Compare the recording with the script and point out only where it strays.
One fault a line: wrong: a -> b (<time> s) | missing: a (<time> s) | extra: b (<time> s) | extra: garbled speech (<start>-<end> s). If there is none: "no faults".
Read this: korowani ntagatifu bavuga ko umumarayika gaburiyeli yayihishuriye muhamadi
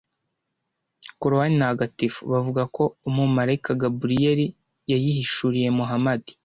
no faults